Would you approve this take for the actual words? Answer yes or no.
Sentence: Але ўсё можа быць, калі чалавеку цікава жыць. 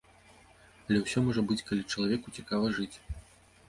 yes